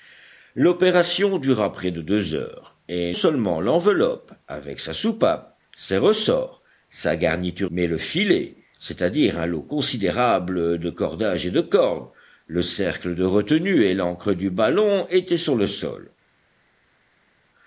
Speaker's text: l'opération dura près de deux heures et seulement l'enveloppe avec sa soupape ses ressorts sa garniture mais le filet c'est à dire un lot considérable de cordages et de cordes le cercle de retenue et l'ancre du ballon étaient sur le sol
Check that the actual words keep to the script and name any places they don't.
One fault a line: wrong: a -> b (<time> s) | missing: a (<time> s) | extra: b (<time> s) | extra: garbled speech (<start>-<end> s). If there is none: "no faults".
no faults